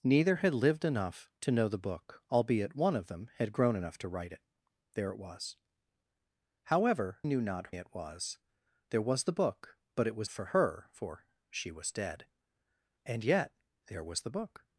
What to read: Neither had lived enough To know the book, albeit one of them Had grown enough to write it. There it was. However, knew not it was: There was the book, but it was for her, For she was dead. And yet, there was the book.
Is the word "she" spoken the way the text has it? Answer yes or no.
yes